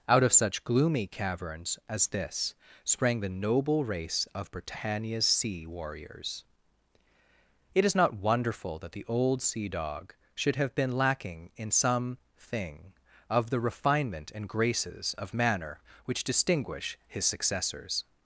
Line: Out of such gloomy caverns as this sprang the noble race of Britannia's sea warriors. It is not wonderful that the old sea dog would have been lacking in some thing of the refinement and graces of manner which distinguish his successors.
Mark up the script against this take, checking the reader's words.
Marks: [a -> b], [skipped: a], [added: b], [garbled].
Out of such gloomy caverns as this sprang the noble race of Britannia's sea warriors. It is not wonderful that the old sea dog [would -> should] have been lacking in some thing of the refinement and graces of manner which distinguish his successors.